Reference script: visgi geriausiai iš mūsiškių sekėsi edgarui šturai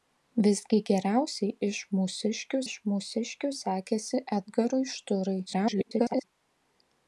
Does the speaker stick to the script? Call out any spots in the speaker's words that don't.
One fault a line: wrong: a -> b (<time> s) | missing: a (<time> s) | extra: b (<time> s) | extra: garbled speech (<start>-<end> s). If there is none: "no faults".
extra: iš mūsiškių (2.6 s)
extra: garbled speech (5.5-6.2 s)